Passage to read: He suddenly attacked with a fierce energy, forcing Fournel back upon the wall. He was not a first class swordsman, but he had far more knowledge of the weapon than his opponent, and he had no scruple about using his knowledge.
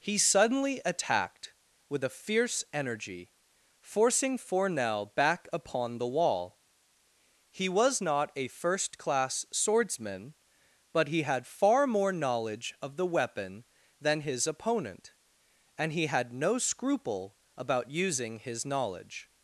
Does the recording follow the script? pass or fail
pass